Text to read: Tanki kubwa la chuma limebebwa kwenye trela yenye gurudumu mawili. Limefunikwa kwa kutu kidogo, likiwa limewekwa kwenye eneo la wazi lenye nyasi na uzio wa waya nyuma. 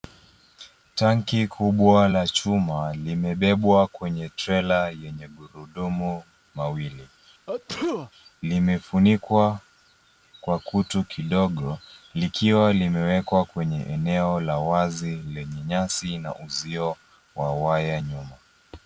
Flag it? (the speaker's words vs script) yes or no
no